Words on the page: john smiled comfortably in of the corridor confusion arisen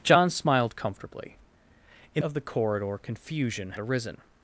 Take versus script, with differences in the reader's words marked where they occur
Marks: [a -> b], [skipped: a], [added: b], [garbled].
john smiled comfortably in of the corridor confusion arisen